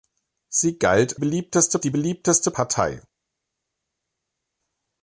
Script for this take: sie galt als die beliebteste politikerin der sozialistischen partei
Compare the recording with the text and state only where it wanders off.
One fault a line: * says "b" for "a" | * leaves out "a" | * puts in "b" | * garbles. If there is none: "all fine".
* says "beliebteste" for "als"
* leaves out "politikerin der sozialistischen"